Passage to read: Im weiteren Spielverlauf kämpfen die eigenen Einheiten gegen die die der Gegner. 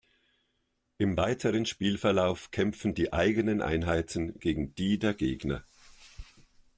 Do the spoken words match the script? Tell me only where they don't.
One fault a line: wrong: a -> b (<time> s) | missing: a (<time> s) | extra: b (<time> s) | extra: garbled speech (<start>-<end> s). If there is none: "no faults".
missing: die (5.0 s)